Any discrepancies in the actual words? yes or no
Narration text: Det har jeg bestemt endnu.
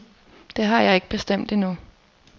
yes